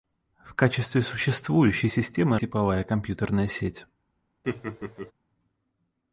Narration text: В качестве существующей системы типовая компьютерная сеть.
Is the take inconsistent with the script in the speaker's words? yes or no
no